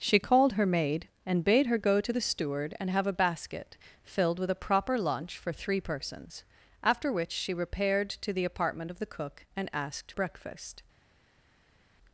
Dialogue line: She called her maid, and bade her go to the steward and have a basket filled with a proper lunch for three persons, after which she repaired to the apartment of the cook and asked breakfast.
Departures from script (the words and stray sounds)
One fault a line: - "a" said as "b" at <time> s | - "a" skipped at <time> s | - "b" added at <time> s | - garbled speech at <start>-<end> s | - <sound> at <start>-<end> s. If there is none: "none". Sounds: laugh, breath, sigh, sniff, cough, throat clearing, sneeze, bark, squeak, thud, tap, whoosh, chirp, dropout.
none